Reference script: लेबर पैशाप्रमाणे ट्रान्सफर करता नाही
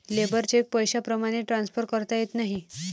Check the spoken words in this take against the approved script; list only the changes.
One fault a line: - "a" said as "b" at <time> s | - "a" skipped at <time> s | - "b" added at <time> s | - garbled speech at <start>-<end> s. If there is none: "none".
- "चेक" added at 0.4 s
- "येत" added at 2.2 s